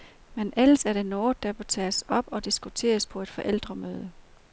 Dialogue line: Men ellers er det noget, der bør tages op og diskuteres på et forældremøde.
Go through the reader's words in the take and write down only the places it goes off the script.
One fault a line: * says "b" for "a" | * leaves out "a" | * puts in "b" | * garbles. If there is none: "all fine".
all fine